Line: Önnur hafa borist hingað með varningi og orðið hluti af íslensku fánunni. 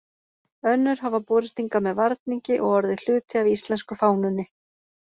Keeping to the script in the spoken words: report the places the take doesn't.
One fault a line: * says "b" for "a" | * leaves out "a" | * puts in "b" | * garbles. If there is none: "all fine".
all fine